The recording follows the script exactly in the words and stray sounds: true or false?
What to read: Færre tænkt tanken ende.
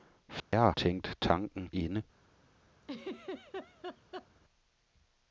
false